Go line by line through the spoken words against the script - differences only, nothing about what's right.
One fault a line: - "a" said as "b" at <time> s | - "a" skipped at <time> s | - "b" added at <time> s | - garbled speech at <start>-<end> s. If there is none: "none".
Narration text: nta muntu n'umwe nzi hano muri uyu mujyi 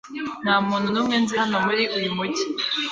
none